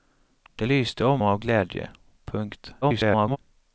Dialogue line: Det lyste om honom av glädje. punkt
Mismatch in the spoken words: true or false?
true